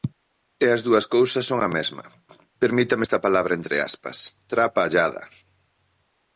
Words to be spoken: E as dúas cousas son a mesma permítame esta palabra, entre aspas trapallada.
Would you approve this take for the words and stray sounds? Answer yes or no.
yes